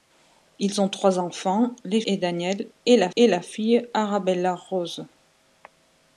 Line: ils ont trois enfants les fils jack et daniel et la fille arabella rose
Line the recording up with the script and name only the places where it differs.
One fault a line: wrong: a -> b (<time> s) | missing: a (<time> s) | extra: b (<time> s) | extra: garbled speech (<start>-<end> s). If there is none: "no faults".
wrong: fils jack -> et daniel (2.1 s)
wrong: daniel -> la (3.0 s)